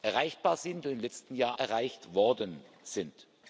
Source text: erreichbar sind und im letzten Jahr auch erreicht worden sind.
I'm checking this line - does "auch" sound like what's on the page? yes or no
no